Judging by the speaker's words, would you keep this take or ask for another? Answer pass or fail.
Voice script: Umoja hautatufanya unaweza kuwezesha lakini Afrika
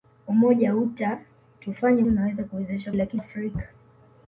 pass